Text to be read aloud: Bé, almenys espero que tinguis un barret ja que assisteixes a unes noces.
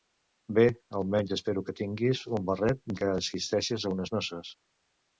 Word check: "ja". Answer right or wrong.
wrong